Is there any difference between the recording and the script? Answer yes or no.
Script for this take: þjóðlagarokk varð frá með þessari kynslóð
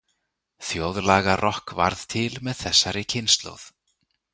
yes